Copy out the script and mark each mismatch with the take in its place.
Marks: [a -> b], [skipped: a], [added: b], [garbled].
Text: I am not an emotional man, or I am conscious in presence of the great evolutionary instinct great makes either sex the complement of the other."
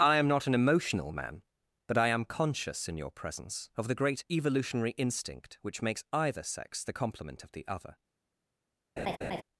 I am not an emotional man, [or -> but] I am conscious in [added: your] presence of the great evolutionary instinct [great -> which] makes either sex the complement of the other."